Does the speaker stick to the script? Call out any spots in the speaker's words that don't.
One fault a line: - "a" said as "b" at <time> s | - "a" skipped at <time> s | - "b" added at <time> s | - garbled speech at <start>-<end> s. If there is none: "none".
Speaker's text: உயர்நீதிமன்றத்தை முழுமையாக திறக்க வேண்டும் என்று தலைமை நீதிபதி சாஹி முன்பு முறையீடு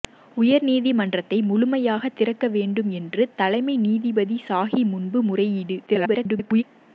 - garbled speech at 5.9-6.6 s